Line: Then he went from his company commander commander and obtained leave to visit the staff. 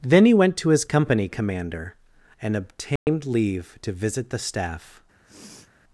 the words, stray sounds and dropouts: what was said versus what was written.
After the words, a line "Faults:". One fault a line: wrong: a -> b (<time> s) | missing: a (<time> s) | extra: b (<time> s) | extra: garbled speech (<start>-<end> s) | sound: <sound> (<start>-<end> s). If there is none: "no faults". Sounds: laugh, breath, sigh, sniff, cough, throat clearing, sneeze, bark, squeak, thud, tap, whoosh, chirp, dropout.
Then he went to his company commander and obtained leave to visit the staff.
Faults:
wrong: from -> to (0.6 s)
missing: commander (1.9 s)
sound: dropout (3.0-3.1 s)
sound: sniff (5.2-5.7 s)